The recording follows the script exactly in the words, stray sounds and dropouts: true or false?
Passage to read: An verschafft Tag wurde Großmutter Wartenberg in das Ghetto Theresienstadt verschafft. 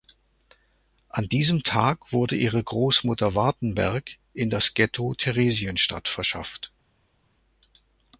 false